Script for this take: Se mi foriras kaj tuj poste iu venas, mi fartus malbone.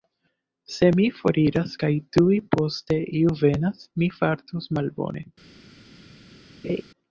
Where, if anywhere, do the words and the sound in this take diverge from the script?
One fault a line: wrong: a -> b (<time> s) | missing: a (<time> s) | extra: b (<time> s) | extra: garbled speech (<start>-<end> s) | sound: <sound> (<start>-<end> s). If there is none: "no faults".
sound: laugh (6.6-6.8 s)